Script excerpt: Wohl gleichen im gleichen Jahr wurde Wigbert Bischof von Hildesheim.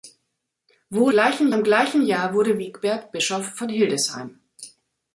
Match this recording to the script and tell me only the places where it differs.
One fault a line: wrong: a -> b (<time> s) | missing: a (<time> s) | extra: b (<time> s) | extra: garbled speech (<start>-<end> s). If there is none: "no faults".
no faults